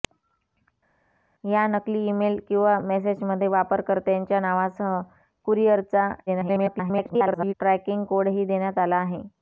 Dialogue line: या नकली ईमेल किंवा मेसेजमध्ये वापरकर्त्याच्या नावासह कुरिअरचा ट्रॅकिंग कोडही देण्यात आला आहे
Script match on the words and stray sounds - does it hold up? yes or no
no